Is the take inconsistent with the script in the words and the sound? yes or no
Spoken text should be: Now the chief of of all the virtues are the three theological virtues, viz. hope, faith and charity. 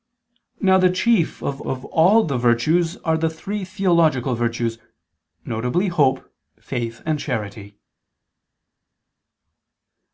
no